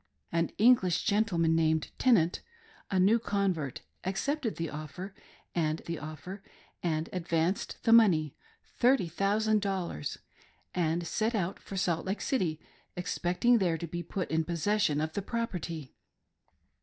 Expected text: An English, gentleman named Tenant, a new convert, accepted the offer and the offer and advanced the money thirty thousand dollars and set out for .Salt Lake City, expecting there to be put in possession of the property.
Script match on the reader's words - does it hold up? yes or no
yes